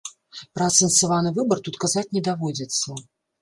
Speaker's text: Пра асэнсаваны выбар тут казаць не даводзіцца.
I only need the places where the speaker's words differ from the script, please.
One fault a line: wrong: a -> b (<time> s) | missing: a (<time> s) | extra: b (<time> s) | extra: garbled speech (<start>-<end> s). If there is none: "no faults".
no faults